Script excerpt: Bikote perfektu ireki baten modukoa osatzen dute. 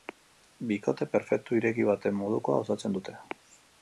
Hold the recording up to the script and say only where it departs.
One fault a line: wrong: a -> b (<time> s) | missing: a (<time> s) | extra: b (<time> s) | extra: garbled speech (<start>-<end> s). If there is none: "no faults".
no faults